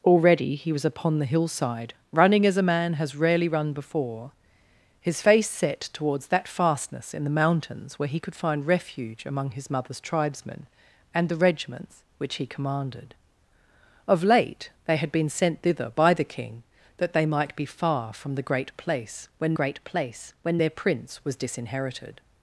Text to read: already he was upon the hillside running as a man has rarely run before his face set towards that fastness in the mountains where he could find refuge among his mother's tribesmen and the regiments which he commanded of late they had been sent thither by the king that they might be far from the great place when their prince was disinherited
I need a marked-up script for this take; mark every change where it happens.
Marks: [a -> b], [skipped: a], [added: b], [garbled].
already he was upon the hillside running as a man has rarely run before his face set towards that fastness in the mountains where he could find refuge among his mother's tribesmen and the regiments which he commanded of late they had been sent thither by the king that they might be far from the great place when [added: great place when] their prince was disinherited